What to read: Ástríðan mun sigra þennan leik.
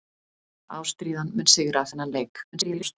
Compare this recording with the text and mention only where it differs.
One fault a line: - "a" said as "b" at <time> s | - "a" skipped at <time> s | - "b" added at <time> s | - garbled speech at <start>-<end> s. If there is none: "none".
- garbled speech at 2.5-3.0 s